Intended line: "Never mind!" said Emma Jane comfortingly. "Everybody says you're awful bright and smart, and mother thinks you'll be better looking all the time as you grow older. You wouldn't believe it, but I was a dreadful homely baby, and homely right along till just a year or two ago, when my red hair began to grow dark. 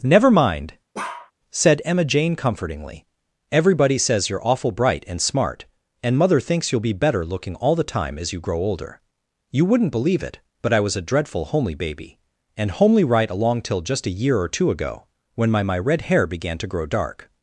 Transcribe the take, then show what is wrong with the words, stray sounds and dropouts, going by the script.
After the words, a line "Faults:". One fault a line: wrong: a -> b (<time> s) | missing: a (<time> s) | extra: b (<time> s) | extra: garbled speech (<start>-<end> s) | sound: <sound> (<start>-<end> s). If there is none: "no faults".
"Never mind!" said Emma Jane comfortingly. "Everybody says you're awful bright and smart, and mother thinks you'll be better looking all the time as you grow older. You wouldn't believe it, but I was a dreadful homely baby, and homely right along till just a year or two ago, when my my red hair began to grow dark.
Faults:
sound: bark (0.9-1.3 s)
extra: my (15.6 s)